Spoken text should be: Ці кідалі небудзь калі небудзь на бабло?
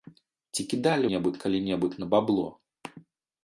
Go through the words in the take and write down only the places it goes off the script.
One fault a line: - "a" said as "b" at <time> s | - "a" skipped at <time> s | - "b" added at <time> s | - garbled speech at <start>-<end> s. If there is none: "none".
none